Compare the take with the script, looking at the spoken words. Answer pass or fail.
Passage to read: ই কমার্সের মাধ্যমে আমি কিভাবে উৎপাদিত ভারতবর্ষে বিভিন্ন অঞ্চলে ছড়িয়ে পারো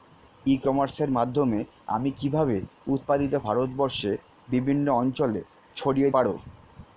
pass